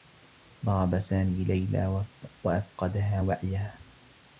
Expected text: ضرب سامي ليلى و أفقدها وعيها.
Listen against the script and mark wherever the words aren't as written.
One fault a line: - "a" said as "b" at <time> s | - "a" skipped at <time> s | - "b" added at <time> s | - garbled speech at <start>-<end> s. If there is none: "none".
none